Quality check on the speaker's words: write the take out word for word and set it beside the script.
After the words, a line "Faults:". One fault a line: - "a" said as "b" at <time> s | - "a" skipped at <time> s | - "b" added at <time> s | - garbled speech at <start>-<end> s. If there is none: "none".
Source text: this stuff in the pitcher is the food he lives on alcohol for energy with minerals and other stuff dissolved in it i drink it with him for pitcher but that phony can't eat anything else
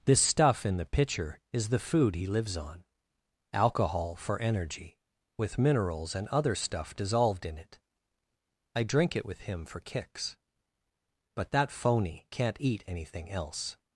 this stuff in the pitcher is the food he lives on alcohol for energy with minerals and other stuff dissolved in it i drink it with him for kicks but that phony can't eat anything else
Faults:
- "pitcher" said as "kicks" at 9.8 s